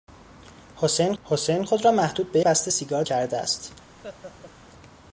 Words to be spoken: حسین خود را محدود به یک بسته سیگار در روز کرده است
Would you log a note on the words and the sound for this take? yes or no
yes